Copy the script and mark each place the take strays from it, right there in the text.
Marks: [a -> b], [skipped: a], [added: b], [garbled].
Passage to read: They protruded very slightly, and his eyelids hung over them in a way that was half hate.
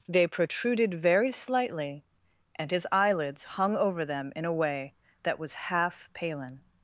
They protruded very slightly, and his eyelids hung over them in a way that was half [hate. -> palin]